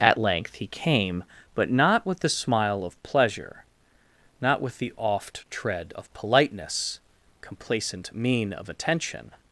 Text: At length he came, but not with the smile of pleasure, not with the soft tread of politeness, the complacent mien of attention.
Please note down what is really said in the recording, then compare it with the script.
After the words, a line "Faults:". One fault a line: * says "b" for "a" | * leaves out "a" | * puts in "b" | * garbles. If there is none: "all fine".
At length he came, but not with the smile of pleasure, not with the oft tread of politeness, complacent mien of attention.
Faults:
* says "oft" for "soft"
* leaves out "the"